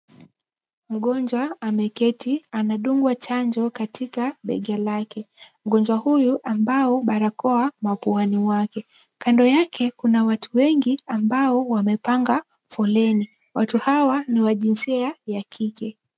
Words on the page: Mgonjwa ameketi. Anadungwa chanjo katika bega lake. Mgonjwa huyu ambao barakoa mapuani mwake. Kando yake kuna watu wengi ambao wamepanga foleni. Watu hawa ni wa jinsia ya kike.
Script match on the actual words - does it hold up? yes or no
yes